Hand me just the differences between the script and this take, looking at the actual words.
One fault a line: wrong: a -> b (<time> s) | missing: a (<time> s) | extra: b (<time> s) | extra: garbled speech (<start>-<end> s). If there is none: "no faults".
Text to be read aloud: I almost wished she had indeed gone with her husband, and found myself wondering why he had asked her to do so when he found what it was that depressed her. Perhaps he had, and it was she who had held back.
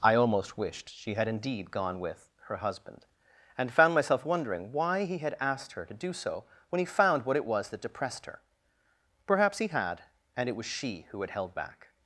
no faults